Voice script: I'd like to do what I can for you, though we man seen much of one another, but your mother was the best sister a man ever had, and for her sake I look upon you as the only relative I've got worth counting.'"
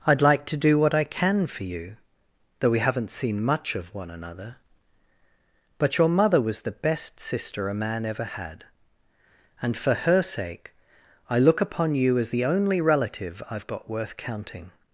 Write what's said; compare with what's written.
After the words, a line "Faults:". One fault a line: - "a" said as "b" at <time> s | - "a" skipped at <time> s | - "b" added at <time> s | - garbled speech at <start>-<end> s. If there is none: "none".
I'd like to do what I can for you, though we haven't seen much of one another, but your mother was the best sister a man ever had, and for her sake I look upon you as the only relative I've got worth counting.'"
Faults:
- "man" said as "haven't" at 2.8 s